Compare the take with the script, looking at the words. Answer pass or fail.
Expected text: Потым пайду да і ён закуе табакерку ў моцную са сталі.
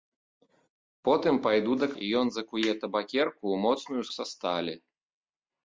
pass